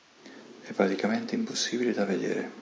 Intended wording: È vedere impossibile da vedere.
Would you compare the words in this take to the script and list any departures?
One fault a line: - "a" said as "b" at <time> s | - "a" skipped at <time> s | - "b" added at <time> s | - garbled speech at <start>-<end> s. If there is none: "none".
- "vedere" said as "praticamente" at 0.7 s